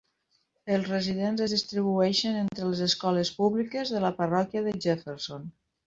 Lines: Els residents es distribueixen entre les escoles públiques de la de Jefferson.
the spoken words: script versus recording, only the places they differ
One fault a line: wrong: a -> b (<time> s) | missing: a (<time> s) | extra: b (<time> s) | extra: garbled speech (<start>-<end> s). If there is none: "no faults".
extra: parròquia (4.2 s)